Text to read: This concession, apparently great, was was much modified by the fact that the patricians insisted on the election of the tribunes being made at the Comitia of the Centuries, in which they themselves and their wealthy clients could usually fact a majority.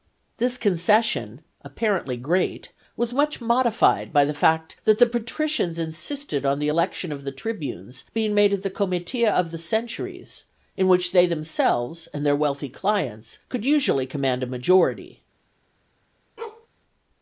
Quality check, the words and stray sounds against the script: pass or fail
fail